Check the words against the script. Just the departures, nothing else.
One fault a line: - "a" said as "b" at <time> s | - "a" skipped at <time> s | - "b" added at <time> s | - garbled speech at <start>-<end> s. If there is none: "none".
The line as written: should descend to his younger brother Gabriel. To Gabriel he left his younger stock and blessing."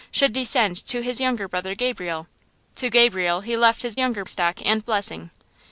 none